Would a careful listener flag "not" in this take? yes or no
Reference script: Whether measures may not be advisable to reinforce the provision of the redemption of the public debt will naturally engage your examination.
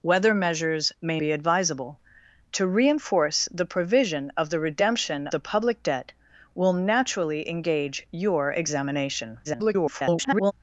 yes